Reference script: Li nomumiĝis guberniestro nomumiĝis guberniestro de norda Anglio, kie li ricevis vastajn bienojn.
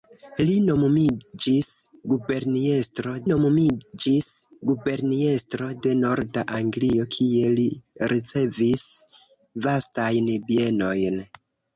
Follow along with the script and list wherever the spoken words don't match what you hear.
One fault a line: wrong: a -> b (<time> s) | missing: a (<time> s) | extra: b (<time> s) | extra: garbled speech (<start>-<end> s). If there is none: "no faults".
no faults